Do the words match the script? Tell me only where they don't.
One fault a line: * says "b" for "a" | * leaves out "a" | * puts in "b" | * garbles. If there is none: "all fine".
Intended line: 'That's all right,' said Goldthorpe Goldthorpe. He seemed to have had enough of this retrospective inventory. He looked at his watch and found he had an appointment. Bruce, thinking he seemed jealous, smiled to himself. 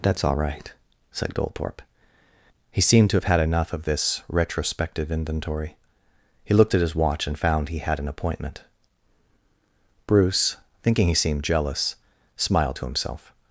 * leaves out "Goldthorpe"